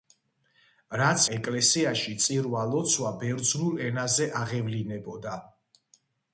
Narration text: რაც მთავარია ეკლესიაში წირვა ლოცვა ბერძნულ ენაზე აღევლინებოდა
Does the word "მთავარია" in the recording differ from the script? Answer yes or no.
yes